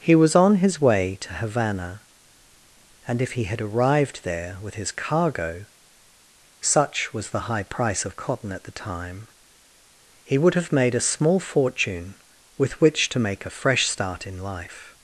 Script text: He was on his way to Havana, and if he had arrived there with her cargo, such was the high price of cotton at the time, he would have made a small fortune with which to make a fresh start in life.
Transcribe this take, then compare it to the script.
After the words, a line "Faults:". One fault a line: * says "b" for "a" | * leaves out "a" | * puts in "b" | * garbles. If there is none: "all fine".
He was on his way to Havana, and if he had arrived there with his cargo, such was the high price of cotton at the time, he would have made a small fortune with which to make a fresh start in life.
Faults:
* says "his" for "her"